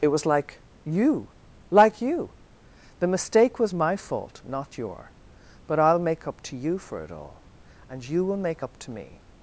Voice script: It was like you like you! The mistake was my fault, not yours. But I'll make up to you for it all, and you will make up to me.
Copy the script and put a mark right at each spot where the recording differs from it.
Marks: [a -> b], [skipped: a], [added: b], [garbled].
It was like you like you! The mistake was my fault, not [yours. -> your] But I'll make up to you for it all, and you will make up to me.